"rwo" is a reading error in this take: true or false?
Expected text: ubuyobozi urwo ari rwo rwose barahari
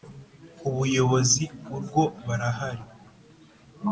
true